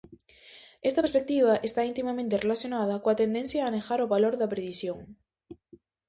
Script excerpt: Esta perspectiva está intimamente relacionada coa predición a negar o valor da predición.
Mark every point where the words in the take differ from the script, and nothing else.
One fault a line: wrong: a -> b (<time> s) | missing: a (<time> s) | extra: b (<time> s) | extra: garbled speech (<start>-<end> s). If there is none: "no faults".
wrong: predición -> tendencia (3.2 s)